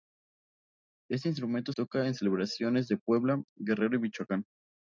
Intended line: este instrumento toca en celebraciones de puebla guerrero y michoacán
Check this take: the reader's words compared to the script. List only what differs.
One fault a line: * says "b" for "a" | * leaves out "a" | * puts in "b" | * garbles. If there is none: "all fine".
all fine